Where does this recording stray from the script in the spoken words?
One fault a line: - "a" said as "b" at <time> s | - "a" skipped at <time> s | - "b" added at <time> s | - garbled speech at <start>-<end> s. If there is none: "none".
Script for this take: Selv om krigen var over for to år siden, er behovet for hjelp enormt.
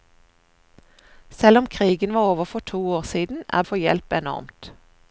- "behovet" skipped at 3.6 s